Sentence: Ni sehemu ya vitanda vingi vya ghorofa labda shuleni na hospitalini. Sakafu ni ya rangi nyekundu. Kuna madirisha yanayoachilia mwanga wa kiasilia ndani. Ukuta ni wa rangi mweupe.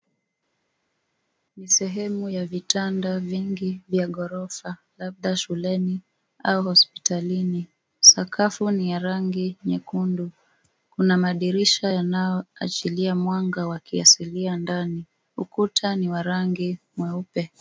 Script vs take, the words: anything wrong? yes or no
yes